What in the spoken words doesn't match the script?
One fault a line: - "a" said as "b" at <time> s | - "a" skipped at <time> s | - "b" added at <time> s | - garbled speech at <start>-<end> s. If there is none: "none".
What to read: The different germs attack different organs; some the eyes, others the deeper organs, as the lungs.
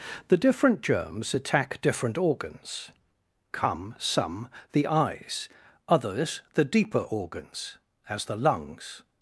- "come" added at 3.5 s